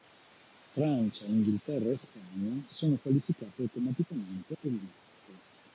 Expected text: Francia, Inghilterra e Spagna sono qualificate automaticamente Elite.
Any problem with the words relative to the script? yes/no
no